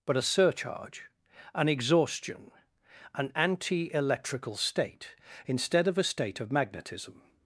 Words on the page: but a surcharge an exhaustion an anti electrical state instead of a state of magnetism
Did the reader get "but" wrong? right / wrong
right